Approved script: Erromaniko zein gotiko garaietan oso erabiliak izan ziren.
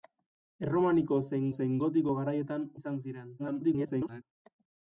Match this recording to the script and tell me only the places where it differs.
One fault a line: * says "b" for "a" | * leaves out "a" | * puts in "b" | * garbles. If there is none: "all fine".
* puts in "zein"
* leaves out "oso erabiliak"
* garbles